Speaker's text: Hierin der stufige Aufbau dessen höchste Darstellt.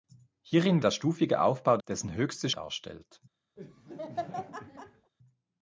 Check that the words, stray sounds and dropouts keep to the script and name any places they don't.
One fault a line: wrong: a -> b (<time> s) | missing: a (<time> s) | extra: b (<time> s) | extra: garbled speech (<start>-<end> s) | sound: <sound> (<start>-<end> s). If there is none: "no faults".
sound: laugh (3.6-5.1 s)